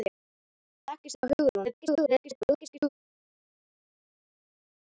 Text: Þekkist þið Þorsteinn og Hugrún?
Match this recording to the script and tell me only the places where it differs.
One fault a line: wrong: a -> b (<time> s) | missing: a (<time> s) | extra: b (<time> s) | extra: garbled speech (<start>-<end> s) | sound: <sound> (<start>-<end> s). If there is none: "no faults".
missing: þið Þorsteinn (1.2 s)
extra: garbled speech (1.6-2.9 s)